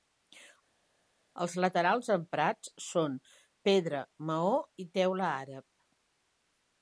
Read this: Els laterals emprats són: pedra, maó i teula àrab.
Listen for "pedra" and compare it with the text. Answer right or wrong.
right